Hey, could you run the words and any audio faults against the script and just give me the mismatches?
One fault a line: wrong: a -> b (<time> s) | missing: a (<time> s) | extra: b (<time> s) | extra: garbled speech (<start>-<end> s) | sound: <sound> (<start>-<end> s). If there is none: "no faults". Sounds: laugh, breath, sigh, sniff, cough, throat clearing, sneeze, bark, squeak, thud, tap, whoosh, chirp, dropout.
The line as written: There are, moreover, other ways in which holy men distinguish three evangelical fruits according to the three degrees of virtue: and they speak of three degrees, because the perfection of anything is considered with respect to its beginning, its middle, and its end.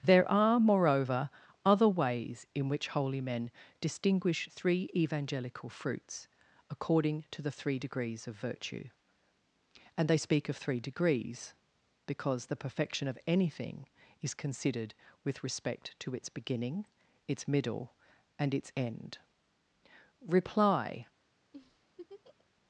extra: Reply (20.3 s)
sound: laugh (21.5-22.5 s)